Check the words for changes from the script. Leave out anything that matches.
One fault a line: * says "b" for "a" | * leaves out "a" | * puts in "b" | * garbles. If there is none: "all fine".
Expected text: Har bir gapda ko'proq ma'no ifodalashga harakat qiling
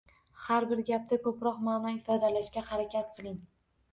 all fine